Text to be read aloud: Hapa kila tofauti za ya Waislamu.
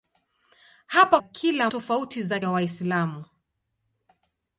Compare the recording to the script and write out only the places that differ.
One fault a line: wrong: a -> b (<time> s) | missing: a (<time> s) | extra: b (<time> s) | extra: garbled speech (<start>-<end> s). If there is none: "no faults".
no faults